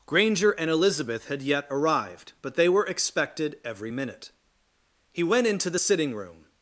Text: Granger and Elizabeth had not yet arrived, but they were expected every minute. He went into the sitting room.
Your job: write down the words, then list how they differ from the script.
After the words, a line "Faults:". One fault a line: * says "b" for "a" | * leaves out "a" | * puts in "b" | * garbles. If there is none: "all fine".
Granger and Elizabeth had yet arrived, but they were expected every minute. He went into the sitting room.
Faults:
* leaves out "not"